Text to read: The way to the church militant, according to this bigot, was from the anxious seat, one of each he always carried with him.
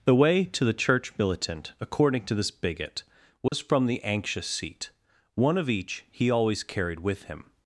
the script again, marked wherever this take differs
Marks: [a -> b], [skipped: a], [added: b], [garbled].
The way to the church militant, according to this bigot, was from the anxious seat, one of each he always carried with him.